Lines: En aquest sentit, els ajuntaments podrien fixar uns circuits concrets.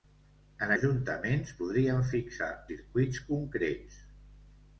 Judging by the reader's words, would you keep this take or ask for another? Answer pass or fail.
fail